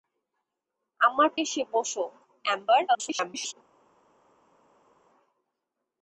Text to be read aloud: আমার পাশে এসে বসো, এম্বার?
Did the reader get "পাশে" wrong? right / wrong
wrong